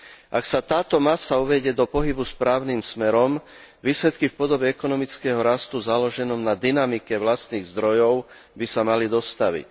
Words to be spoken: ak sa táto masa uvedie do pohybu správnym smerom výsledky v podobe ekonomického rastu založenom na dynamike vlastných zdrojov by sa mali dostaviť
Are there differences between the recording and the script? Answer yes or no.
no